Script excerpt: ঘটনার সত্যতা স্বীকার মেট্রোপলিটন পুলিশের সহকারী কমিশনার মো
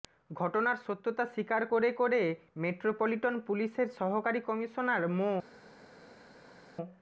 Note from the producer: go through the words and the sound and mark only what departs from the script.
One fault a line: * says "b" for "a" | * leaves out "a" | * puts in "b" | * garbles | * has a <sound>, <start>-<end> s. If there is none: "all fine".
* puts in "করে করে"